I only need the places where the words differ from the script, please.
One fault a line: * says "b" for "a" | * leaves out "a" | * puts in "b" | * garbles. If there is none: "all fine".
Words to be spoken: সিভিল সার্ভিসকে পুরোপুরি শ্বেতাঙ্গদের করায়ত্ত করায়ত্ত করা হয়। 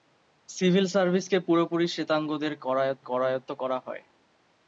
all fine